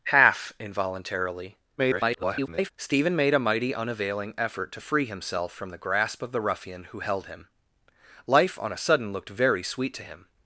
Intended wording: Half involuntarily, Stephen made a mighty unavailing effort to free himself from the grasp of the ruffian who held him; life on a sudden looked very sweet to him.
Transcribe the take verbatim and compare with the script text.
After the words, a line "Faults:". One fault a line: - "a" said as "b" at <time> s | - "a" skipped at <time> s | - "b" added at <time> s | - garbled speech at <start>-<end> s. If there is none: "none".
Half involuntarily, [garbled] Stephen made a mighty unavailing effort to free himself from the grasp of the ruffian who held him; life on a sudden looked very sweet to him.
Faults:
- garbled speech at 1.8-2.7 s